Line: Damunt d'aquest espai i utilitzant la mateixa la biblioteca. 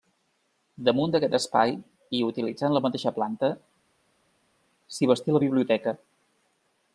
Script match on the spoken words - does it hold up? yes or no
no